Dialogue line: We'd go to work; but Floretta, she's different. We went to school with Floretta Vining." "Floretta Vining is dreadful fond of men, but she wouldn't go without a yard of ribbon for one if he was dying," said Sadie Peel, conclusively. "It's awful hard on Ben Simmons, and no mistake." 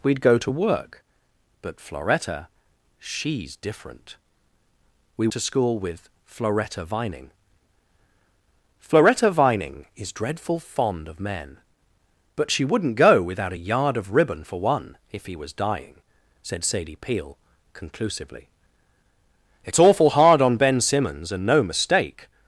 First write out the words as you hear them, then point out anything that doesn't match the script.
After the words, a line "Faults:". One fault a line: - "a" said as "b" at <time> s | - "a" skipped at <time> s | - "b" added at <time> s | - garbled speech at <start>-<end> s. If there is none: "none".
We'd go to work; but Floretta, she's different. We to school with Floretta Vining." "Floretta Vining is dreadful fond of men, but she wouldn't go without a yard of ribbon for one if he was dying," said Sadie Peel, conclusively. "It's awful hard on Ben Simmons, and no mistake."
Faults:
- "went" skipped at 5.3 s